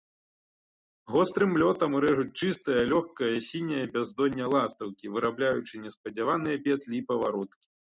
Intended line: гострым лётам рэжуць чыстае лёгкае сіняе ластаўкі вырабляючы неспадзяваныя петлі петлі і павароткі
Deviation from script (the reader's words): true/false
true